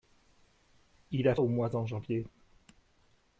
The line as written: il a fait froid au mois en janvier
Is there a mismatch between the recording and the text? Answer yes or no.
yes